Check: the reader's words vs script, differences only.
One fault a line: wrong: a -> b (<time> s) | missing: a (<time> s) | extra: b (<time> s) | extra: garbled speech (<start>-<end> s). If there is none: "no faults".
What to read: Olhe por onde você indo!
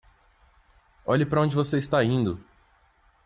wrong: por -> para (1.3 s)
extra: está (1.8 s)